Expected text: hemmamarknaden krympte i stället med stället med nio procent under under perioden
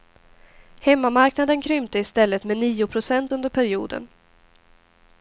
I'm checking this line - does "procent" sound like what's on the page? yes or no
yes